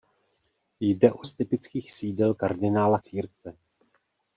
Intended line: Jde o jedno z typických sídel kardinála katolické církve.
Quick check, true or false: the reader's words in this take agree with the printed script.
false